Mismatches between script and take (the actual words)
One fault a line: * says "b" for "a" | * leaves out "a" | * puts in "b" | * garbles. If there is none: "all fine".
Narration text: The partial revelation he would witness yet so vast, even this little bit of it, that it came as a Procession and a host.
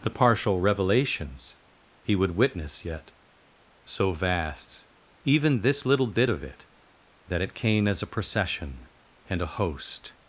* says "revelations" for "revelation"